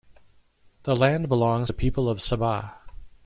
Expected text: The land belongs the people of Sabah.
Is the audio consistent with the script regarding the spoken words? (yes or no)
yes